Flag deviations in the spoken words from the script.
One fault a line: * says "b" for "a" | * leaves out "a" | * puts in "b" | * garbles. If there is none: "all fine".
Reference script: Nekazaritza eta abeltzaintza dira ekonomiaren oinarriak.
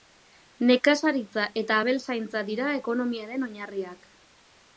all fine